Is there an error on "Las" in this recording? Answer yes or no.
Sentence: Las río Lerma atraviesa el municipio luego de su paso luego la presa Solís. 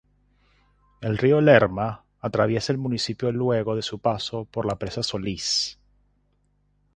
yes